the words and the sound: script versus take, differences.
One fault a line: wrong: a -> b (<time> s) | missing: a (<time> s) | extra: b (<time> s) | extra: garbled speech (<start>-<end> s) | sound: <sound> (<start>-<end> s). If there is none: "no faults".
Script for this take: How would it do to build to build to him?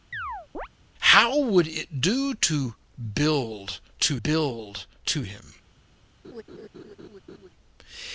sound: chirp (0.1-0.7 s)
sound: laugh (6.2-7.5 s)